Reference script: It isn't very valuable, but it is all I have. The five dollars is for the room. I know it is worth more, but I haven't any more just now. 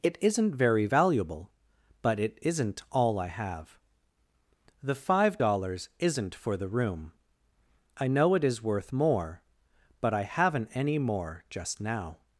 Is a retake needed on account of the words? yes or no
yes